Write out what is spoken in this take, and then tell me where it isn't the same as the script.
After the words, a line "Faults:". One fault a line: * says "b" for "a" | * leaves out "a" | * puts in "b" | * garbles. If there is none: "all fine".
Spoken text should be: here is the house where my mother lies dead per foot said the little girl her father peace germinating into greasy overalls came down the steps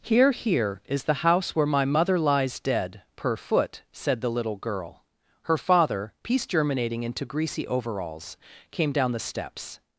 here here is the house where my mother lies dead per foot said the little girl her father peace germinating into greasy overalls came down the steps
Faults:
* puts in "here"